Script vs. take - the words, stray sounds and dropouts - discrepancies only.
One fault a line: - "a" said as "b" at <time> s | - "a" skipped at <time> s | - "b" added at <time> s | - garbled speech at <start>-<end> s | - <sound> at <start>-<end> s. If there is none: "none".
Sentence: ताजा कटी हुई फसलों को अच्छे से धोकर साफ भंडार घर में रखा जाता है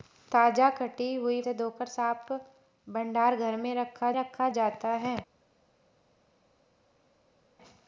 - "फसलों को अच्छे" skipped at 1.4 s
- "रखा" added at 4.1 s